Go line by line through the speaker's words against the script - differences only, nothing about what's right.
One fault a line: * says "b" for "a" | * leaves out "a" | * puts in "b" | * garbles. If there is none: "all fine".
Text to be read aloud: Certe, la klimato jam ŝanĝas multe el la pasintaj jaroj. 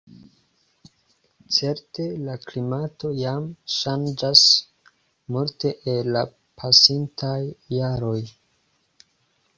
all fine